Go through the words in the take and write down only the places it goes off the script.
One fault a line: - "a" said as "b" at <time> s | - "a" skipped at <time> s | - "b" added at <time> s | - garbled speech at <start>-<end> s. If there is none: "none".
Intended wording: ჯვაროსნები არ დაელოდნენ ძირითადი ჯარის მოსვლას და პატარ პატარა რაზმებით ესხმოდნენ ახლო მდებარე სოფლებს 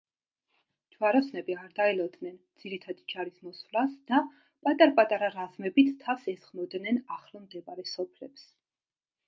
- "თავს" added at 6.1 s